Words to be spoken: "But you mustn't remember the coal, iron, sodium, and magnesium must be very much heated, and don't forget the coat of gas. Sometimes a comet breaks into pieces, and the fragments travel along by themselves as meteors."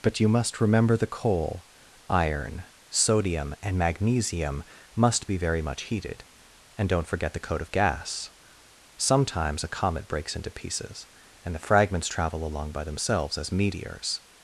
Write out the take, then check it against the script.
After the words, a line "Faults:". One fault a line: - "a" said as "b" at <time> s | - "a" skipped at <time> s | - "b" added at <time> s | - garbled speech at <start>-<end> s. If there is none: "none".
"But you must remember the coal, iron, sodium, and magnesium must be very much heated, and don't forget the coat of gas. Sometimes a comet breaks into pieces, and the fragments travel along by themselves as meteors."
Faults:
- "mustn't" said as "must" at 0.3 s